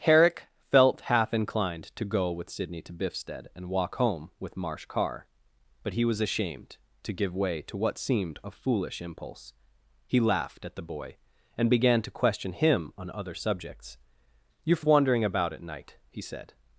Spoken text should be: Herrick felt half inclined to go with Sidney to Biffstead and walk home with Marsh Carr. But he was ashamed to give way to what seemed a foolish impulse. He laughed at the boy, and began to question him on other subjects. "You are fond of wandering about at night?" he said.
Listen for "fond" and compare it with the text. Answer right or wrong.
wrong